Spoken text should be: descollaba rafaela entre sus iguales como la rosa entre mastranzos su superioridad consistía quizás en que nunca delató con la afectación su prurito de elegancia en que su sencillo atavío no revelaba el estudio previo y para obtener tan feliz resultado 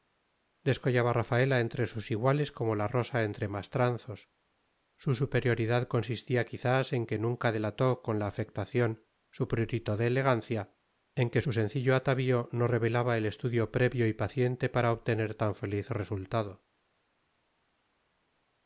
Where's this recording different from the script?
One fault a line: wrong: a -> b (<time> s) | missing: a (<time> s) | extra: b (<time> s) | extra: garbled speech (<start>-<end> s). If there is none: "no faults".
extra: paciente (14.1 s)